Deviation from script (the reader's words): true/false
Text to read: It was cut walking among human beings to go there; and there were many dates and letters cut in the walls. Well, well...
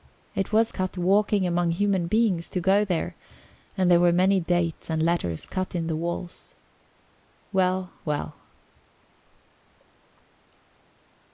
false